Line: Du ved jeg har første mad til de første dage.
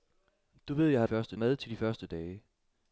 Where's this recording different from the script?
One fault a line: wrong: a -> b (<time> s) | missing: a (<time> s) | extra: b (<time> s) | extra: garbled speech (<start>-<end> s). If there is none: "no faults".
no faults